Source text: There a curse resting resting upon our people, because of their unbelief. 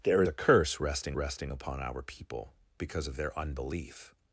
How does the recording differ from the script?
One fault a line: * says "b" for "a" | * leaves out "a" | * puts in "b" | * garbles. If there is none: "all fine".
all fine